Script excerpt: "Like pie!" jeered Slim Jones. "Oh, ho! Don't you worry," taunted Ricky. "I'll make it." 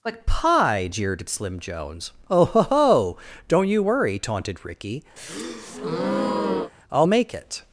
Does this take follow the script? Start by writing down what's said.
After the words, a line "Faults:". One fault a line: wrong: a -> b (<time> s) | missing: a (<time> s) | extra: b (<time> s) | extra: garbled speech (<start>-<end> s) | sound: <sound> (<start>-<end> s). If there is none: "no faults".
"Like pie!" jeered Slim Jones. "Oh, ho! ho Don't you worry," taunted Ricky. "I'll make it."
Faults:
extra: ho (2.6 s)
sound: breath (5.2-6.7 s)